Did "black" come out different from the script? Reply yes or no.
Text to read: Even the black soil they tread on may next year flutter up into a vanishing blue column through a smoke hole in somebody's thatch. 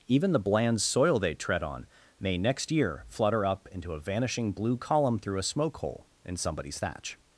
yes